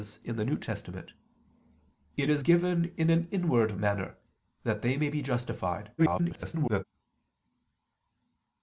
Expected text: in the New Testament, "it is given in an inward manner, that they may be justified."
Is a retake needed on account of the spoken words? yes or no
yes